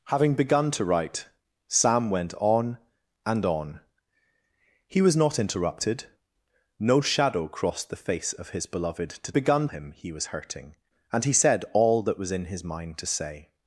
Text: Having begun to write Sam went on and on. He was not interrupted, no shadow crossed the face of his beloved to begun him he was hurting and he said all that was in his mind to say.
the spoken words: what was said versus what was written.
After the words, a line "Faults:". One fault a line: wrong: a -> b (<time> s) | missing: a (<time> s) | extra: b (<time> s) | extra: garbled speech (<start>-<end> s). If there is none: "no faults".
Having begun to write Sam went on and on. He was not interrupted, no shadow crossed the face of his beloved to begun him he was hurting and he said all that was in his mind to say.
Faults:
no faults